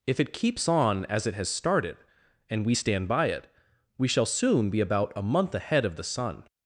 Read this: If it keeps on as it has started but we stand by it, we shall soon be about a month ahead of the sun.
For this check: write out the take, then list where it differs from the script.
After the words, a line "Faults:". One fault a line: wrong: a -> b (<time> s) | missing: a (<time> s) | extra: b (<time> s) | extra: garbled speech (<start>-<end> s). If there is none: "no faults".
If it keeps on as it has started and we stand by it, we shall soon be about a month ahead of the sun.
Faults:
wrong: but -> and (2.5 s)